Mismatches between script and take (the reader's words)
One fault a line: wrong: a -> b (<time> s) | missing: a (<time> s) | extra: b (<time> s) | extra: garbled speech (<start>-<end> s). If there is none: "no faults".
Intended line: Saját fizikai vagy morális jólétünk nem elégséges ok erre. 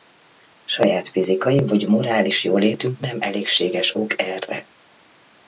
no faults